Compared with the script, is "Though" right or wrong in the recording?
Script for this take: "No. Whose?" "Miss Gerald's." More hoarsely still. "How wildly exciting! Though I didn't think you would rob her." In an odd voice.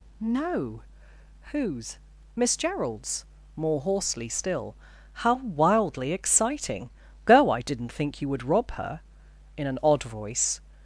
wrong